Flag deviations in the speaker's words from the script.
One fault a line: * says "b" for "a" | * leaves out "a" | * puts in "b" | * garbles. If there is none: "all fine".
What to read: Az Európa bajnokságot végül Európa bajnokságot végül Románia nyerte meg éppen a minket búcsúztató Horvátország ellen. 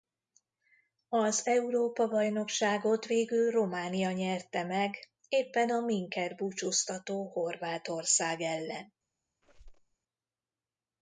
* leaves out "Európa bajnokságot végül"